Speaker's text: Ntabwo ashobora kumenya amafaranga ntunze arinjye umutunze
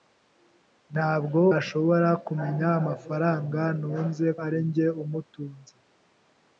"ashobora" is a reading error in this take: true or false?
false